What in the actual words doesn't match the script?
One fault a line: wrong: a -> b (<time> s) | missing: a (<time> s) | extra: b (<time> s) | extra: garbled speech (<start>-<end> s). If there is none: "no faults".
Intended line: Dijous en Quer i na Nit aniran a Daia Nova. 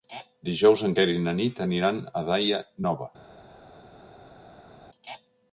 no faults